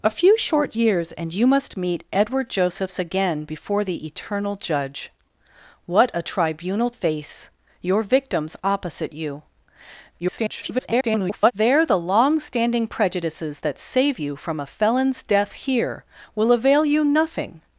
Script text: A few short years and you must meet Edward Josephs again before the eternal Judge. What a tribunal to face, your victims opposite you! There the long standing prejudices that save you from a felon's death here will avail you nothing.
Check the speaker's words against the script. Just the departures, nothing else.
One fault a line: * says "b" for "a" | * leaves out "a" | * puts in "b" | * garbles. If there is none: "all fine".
* leaves out "to"
* garbles